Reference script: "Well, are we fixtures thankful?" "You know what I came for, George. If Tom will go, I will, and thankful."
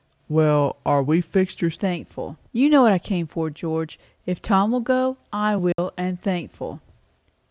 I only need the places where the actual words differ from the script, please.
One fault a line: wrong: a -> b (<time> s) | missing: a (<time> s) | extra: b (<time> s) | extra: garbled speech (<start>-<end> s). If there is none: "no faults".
no faults